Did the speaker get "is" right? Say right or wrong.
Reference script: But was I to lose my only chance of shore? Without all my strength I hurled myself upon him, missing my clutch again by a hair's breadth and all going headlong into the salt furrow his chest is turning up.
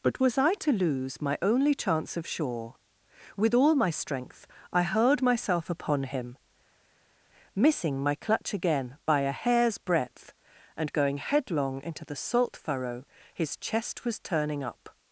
wrong